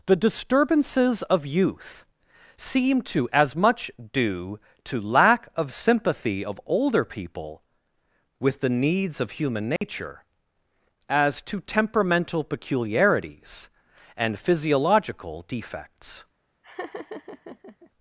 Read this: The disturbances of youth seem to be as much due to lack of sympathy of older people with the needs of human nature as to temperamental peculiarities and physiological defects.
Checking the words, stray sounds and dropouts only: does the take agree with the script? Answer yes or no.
no